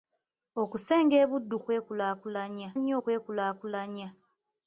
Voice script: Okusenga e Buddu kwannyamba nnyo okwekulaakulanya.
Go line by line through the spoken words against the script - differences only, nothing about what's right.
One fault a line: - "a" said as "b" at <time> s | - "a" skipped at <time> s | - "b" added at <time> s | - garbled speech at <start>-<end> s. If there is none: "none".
- "kwannyamba" said as "okwekulaakulanya" at 1.6 s